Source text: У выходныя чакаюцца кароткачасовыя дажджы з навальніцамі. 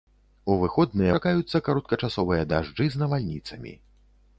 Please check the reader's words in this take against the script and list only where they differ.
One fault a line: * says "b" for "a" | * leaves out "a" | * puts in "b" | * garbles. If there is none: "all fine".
all fine